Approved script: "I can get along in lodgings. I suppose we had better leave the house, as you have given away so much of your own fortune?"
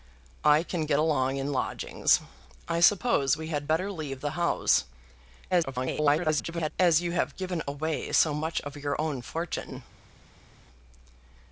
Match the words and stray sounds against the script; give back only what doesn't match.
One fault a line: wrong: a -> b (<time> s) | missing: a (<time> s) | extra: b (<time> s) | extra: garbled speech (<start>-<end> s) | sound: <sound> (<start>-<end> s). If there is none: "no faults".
extra: garbled speech (5.5-6.7 s)